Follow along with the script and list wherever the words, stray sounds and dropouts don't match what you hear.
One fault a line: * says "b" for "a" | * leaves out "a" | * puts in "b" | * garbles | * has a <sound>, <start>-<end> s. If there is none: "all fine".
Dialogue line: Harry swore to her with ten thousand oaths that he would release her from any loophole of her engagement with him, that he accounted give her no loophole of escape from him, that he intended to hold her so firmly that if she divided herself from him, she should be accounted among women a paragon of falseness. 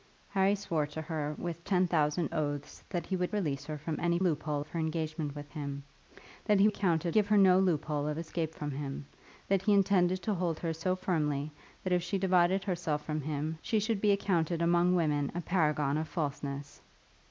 all fine